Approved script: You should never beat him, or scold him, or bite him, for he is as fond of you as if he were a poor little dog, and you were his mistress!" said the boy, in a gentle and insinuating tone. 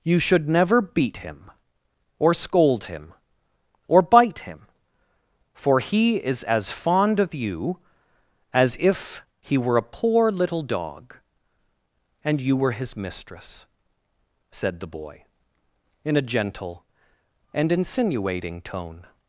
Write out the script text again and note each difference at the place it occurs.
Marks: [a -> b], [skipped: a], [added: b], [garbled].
You should never beat him, or scold him, or bite him, for he is as fond of you as if he were a poor little dog, and you were his mistress!" said the boy, in a gentle and insinuating tone.